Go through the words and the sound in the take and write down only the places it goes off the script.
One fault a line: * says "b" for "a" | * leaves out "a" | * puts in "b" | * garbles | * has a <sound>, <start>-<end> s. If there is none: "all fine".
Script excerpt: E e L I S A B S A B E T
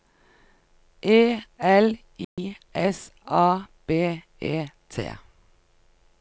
* leaves out "e"
* has a dropout, 2.2-2.4 s
* leaves out "S A B"